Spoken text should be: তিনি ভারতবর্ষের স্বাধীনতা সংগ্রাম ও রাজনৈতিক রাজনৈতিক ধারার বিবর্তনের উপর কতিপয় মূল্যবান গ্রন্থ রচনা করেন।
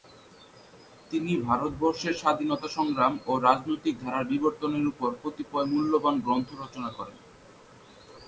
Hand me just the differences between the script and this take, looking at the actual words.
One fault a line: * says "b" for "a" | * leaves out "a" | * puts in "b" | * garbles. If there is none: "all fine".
* leaves out "রাজনৈতিক"